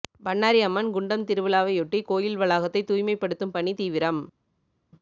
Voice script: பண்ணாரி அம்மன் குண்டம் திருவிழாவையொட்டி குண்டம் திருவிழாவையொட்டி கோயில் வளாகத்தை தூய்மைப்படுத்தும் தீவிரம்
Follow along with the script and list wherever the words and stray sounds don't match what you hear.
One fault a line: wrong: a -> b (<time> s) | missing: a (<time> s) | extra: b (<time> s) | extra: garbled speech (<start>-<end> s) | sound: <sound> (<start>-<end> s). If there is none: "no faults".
missing: குண்டம் திருவிழாவையொட்டி (2.0 s)
extra: பணி (3.5 s)